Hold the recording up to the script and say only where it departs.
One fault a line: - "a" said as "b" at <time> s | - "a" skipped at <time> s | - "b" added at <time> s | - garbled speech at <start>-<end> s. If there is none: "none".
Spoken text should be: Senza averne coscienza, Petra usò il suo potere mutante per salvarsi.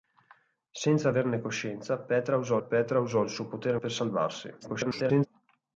- "Petra usò" added at 2.6 s
- "mutante" skipped at 3.8 s
- garbled speech at 4.6-5.3 s